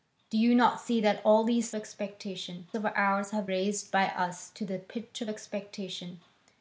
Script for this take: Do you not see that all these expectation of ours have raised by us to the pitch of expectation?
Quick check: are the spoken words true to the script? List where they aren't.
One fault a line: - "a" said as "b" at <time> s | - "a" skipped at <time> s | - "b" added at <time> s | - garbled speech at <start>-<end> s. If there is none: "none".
none